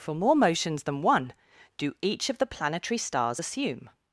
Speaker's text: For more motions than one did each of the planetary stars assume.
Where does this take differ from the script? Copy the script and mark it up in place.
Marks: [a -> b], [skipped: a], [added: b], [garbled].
For more motions than one [did -> do] each of the planetary stars assume.